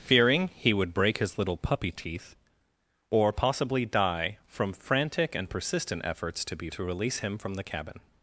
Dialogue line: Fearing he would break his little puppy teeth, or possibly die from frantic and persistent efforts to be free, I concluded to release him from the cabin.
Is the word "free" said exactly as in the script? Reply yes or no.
no